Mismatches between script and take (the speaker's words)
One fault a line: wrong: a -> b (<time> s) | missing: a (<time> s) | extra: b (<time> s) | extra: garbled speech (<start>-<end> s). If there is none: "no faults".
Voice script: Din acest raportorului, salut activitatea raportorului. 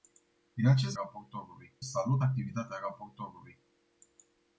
no faults